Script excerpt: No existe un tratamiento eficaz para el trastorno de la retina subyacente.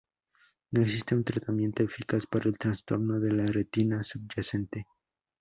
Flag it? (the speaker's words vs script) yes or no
no